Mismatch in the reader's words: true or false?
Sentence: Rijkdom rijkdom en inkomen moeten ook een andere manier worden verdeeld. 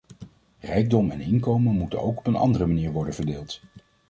true